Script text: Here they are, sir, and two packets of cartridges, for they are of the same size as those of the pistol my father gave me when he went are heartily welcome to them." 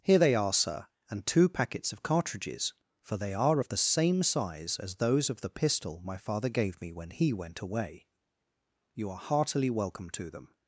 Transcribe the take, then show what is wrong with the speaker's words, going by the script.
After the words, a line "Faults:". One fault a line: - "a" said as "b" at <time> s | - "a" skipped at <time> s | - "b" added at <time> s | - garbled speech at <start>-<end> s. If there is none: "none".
Here they are, sir, and two packets of cartridges, for they are of the same size as those of the pistol my father gave me when he went away. You are heartily welcome to them."
Faults:
- "away You" added at 7.6 s